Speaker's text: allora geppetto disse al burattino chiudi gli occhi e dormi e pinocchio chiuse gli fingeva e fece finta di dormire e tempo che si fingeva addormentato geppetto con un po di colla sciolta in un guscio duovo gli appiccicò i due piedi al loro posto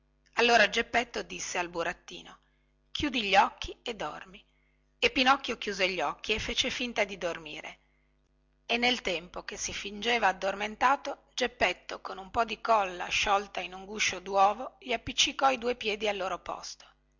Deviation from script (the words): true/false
true